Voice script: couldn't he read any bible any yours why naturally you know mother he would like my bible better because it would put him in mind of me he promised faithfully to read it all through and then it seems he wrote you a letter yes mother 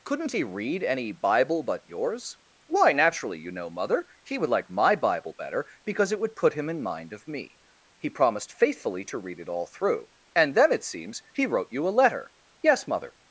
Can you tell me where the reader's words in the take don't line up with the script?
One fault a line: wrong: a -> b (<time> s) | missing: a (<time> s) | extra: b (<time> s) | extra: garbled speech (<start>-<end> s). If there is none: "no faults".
wrong: any -> but (1.6 s)